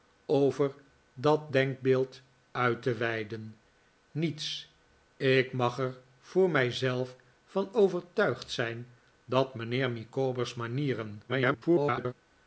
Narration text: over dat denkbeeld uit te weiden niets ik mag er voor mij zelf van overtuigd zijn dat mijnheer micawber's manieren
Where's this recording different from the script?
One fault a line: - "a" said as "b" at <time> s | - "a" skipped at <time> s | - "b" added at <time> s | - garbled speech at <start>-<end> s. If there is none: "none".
- garbled speech at 11.3-12.1 s